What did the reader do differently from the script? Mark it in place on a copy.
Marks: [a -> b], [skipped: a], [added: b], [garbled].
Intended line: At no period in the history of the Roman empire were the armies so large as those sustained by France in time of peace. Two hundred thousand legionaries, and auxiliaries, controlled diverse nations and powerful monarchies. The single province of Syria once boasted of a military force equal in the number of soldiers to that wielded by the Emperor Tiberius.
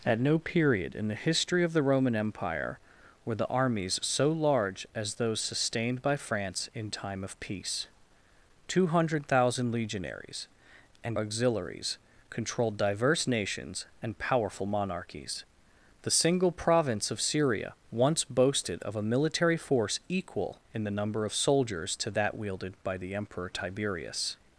At no period in the history of the Roman empire were the armies so large as those sustained by France in time of peace. Two hundred thousand legionaries, and auxiliaries, controlled diverse nations and powerful monarchies. The single province of Syria once boasted of a military force equal in the number of soldiers to that wielded by the Emperor Tiberius.